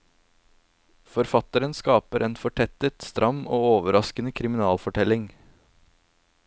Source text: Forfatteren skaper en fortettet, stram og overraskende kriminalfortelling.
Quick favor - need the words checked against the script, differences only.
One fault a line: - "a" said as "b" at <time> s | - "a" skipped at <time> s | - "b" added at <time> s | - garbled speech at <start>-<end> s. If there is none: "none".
none